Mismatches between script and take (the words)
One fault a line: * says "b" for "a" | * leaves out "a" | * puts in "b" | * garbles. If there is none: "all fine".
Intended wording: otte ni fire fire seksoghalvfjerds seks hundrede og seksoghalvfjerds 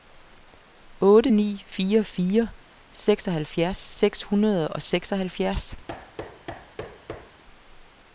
all fine